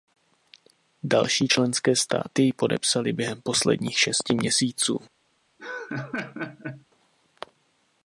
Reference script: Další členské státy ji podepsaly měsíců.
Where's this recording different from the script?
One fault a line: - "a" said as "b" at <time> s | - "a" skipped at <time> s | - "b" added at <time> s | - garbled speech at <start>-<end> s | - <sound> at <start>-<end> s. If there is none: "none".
- "během posledních šesti" added at 3.1 s
- laugh at 5.6-6.9 s